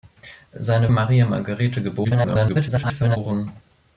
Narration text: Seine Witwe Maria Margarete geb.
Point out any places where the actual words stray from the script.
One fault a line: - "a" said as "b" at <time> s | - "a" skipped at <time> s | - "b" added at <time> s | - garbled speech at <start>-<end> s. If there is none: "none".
- "Witwe" skipped at 0.9 s
- garbled speech at 2.0-3.2 s